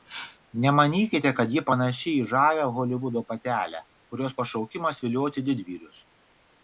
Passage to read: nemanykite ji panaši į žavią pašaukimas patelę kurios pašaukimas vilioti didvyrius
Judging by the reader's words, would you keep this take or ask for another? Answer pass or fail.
fail